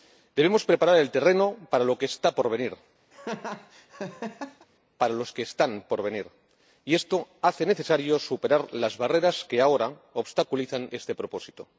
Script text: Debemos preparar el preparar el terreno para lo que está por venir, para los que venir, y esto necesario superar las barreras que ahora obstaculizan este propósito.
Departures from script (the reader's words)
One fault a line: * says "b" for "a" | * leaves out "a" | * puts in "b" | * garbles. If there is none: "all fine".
* leaves out "preparar el"
* puts in "están por"
* puts in "hace"